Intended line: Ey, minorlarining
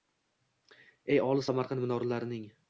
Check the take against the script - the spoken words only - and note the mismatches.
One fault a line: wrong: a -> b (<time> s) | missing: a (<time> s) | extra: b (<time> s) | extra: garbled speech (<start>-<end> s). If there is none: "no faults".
extra: olis Samarqand (1.2 s)